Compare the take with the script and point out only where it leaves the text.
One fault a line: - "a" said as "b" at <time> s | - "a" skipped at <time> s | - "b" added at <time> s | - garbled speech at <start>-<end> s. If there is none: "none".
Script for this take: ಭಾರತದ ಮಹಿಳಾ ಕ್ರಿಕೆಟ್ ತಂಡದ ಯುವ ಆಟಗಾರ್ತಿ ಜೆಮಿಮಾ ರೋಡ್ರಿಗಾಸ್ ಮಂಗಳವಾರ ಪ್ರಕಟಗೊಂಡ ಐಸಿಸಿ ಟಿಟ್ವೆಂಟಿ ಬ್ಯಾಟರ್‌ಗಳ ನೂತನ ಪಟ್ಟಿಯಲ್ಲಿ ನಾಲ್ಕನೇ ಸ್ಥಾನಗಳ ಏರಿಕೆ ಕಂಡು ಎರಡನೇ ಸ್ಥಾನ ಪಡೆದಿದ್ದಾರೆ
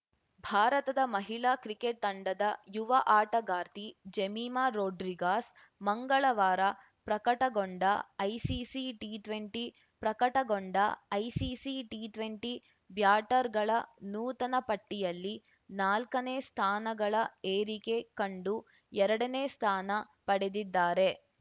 - "ಪ್ರಕಟಗೊಂಡ ಐಸಿಸಿ ಟಿಟ್ವೆಂಟಿ" added at 10.0 s